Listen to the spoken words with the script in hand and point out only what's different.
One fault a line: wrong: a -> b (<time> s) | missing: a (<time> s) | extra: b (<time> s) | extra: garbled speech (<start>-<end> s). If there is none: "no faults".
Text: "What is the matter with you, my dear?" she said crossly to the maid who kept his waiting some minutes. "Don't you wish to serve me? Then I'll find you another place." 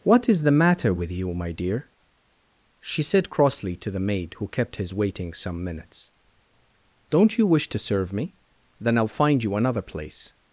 no faults